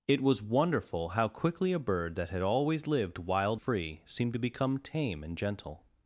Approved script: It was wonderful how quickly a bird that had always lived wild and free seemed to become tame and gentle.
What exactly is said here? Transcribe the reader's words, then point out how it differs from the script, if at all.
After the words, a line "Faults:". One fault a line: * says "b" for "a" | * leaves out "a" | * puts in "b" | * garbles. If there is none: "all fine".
It was wonderful how quickly a bird that had always lived wild free seemed to become tame and gentle.
Faults:
* leaves out "and"